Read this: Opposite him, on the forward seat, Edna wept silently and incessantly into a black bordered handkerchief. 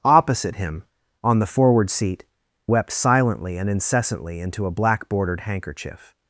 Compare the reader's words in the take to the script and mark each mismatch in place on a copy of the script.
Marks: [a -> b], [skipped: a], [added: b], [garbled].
Opposite him, on the forward seat, [skipped: Edna] wept silently and incessantly into a black bordered handkerchief.